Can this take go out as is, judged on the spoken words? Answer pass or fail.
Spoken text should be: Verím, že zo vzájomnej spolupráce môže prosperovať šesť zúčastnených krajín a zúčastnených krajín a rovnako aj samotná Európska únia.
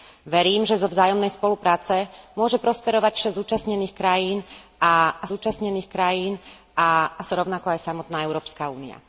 pass